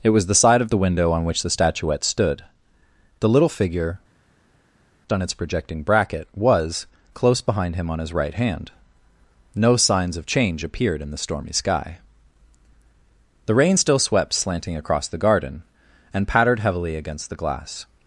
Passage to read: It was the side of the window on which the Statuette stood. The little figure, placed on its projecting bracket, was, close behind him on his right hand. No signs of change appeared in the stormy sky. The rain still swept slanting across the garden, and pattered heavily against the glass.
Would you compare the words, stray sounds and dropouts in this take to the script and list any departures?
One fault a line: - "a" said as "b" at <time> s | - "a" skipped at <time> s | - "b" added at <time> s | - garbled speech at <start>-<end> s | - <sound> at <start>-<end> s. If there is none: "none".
- "placed" skipped at 4.0 s